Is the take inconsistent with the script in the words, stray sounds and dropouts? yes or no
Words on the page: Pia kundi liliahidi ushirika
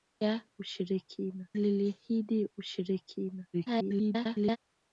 yes